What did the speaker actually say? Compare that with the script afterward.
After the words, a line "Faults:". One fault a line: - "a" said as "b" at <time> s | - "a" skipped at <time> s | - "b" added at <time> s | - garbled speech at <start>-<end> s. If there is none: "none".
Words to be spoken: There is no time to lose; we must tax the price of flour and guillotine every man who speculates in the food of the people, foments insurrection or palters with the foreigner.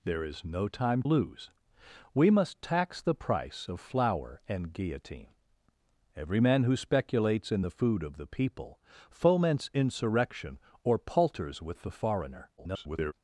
There is no time lose; we must tax the price of flour and guillotine every man who speculates in the food of the people, foments insurrection or palters with the foreigner. [garbled]
Faults:
- "to" skipped at 1.0 s
- garbled speech at 12.6-13.1 s